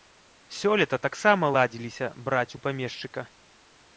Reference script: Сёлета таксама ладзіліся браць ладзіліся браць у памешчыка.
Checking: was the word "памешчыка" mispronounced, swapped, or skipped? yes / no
no